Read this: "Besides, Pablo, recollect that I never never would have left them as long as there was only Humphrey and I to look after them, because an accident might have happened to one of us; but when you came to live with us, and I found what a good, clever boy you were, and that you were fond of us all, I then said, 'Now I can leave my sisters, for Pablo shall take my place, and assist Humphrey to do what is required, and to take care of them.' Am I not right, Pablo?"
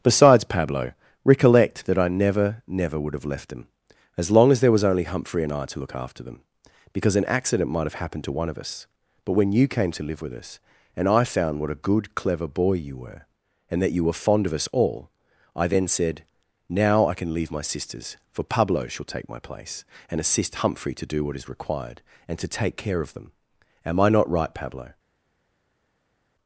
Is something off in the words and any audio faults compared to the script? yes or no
no